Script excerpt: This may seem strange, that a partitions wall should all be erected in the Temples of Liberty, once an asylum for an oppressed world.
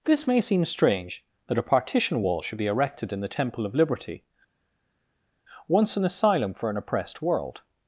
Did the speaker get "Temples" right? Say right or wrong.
wrong